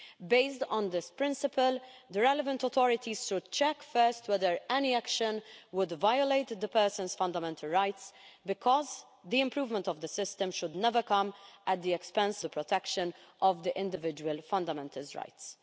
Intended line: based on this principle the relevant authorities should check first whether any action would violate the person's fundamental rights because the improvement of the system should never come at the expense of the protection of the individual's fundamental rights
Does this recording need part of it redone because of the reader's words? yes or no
yes